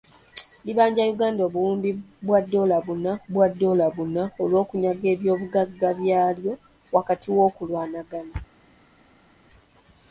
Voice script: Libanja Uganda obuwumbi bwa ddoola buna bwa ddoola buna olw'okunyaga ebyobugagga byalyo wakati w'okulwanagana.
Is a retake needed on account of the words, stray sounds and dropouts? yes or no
no